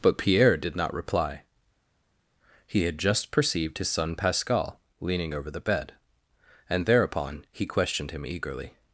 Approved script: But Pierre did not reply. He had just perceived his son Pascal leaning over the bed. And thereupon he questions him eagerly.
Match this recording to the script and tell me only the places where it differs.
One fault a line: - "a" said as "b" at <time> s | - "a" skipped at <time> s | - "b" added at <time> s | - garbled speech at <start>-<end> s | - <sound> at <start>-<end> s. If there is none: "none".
- "questions" said as "questioned" at 7.7 s